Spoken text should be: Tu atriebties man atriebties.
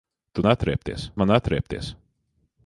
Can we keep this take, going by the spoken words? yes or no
yes